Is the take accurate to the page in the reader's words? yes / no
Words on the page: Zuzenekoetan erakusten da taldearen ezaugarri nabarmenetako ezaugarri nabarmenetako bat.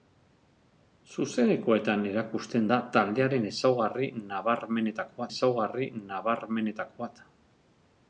yes